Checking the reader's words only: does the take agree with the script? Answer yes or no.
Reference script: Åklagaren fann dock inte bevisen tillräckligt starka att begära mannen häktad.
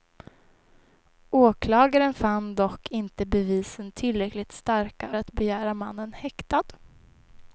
yes